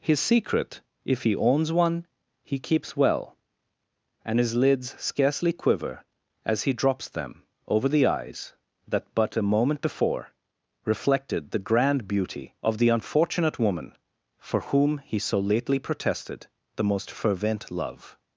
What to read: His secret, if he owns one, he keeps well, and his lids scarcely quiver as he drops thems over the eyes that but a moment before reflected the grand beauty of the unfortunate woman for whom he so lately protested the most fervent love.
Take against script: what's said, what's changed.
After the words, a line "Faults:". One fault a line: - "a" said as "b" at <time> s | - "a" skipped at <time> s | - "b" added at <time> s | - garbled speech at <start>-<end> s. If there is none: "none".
His secret, if he owns one, he keeps well, and his lids scarcely quiver as he drops them over the eyes that but a moment before reflected the grand beauty of the unfortunate woman for whom he so lately protested the most fervent love.
Faults:
- "thems" said as "them" at 7.1 s